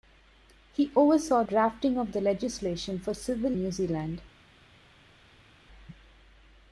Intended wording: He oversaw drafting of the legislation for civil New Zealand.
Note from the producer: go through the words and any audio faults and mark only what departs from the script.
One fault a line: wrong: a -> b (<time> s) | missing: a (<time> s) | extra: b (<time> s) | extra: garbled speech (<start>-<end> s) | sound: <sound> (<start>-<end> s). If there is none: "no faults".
no faults